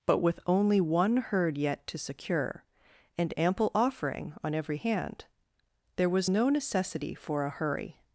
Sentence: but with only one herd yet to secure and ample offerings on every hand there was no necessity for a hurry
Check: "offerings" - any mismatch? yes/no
yes